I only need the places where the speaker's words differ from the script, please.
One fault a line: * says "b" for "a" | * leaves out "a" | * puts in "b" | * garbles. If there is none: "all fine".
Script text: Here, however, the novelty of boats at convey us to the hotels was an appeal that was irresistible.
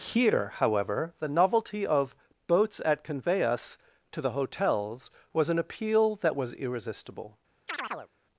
all fine